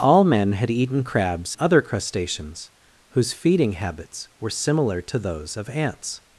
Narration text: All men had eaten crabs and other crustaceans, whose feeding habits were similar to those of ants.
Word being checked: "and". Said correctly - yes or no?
no